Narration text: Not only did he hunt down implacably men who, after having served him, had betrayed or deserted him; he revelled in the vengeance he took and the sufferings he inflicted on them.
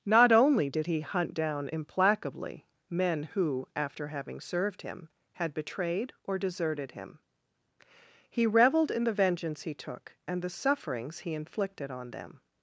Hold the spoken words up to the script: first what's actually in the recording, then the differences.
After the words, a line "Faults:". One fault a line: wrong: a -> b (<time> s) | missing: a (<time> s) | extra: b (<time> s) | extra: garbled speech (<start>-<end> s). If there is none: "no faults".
Not only did he hunt down implacably men who, after having served him, had betrayed or deserted him; he revelled in the vengeance he took and the sufferings he inflicted on them.
Faults:
no faults